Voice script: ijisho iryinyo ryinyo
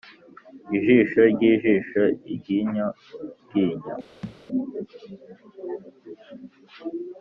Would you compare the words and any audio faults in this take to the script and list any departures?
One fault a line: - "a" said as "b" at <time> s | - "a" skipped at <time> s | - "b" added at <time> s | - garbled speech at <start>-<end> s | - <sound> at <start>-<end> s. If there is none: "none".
- "ryijisho" added at 1.3 s
- thud at 4.2-4.4 s